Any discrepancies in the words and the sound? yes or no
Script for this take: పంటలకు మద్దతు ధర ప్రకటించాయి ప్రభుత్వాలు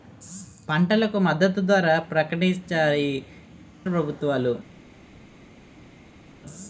no